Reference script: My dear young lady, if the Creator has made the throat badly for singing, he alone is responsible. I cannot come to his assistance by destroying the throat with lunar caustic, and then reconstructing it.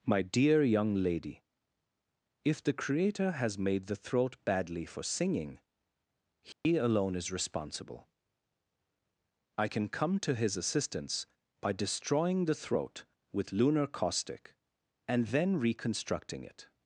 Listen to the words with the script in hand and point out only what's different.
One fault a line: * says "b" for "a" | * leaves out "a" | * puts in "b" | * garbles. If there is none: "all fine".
* says "can" for "cannot"